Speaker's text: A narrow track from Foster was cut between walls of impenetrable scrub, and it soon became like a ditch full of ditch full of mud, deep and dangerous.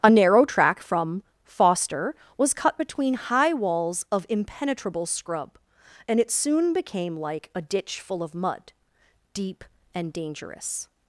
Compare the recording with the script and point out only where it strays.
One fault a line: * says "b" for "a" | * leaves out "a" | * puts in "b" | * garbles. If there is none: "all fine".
* puts in "high"
* leaves out "ditch full of"